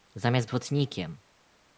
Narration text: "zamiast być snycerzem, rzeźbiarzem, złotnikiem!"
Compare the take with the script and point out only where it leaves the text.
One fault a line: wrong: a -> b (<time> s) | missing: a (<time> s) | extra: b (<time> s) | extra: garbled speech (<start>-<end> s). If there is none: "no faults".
missing: być snycerzem rzeźbiarzem (0.5 s)